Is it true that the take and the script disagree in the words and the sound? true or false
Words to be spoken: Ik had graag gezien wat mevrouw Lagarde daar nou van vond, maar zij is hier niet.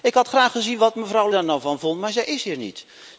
true